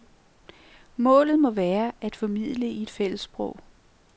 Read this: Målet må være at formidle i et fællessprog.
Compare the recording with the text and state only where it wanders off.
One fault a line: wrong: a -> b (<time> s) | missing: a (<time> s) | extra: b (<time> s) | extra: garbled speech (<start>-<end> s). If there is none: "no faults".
no faults